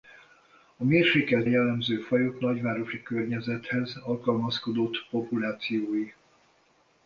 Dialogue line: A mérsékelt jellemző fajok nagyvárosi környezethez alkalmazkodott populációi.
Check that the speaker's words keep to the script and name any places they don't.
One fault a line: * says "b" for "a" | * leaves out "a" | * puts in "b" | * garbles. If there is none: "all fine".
all fine